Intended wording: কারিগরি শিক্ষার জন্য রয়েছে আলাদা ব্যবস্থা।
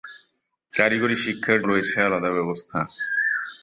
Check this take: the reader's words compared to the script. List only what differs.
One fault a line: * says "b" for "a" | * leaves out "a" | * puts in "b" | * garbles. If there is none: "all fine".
* leaves out "জন্য"